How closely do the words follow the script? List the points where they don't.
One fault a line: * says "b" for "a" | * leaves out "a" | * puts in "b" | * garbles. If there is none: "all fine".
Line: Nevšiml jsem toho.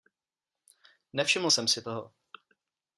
* puts in "si"